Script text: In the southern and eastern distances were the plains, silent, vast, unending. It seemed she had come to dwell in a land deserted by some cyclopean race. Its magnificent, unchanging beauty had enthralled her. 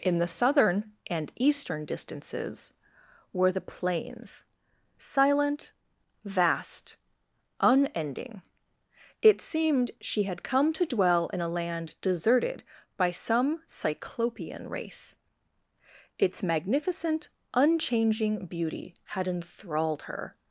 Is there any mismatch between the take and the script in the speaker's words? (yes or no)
no